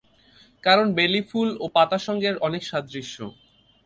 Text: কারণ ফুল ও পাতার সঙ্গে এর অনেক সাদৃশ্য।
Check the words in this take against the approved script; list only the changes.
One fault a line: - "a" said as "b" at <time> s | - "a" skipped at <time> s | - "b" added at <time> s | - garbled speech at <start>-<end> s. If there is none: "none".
- "বেলি" added at 1.0 s